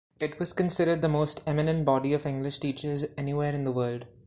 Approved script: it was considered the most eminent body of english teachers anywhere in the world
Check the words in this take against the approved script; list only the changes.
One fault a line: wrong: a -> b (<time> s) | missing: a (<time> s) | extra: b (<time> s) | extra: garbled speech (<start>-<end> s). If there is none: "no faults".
no faults